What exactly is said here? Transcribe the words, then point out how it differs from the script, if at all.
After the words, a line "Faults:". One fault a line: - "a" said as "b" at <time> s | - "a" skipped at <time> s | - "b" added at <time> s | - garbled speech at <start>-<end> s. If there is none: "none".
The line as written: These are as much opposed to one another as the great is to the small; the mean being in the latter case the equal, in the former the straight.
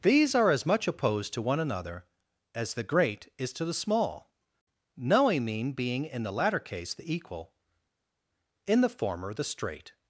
These are as much opposed to one another as the great is to the small; knowing mean being in the latter case the equal, in the former the straight.
Faults:
- "the" said as "knowing" at 5.0 s